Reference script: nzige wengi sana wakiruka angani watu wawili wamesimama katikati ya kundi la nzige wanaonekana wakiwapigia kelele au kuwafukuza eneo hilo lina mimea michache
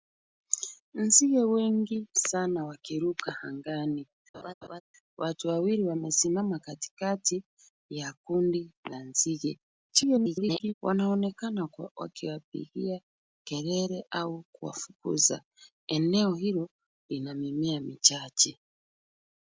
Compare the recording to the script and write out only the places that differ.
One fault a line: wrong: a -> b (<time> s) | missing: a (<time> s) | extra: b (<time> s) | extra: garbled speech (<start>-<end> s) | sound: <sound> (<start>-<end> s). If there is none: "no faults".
sound: laugh (4.3-4.8 s)
extra: garbled speech (9.9-10.7 s)